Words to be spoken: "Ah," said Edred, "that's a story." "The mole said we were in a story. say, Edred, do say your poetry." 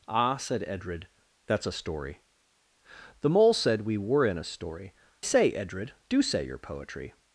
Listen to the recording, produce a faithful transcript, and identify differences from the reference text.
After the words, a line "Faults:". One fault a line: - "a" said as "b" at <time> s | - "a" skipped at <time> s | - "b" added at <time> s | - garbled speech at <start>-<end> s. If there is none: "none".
"Ah," said Edred, "that's a story." "The mole said we were in a story. say, Edred, do say your poetry."
Faults:
none